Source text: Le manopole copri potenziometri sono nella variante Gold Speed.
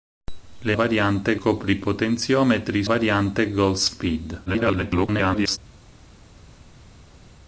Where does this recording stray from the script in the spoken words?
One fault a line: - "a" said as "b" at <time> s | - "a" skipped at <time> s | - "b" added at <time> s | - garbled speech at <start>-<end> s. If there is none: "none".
- "manopole" said as "variante" at 0.7 s
- "sono nella" skipped at 2.8 s
- garbled speech at 4.5-5.6 s